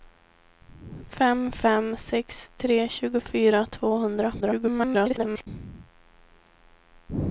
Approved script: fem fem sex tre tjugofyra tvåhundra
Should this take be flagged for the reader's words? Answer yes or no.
yes